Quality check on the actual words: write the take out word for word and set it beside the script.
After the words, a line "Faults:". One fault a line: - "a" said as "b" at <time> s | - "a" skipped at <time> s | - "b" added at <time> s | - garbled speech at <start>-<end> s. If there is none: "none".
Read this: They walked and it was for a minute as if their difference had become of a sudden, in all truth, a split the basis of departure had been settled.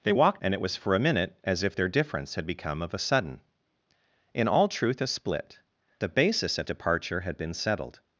They walked and it was for a minute as if their difference had become of a sudden, in all truth, a split the basis of departure had been settled.
Faults:
none